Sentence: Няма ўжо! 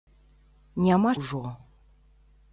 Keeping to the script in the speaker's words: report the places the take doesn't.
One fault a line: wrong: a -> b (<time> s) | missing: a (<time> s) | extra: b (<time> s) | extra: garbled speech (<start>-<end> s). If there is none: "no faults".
no faults